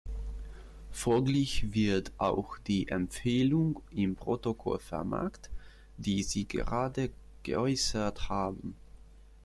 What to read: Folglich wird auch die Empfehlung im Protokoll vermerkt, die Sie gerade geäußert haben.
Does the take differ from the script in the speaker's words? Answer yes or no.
no